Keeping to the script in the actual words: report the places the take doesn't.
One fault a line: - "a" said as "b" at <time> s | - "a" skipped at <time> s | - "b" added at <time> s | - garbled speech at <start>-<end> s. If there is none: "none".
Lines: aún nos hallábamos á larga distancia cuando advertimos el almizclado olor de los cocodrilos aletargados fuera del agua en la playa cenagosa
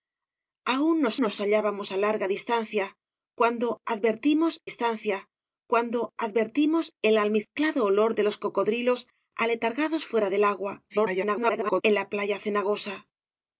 - "nos" added at 1.2 s
- "distancia cuando advertimos" added at 4.7 s
- garbled speech at 10.9-11.8 s